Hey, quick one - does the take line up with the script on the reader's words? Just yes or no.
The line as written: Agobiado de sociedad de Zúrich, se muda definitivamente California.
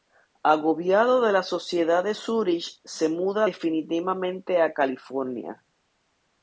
no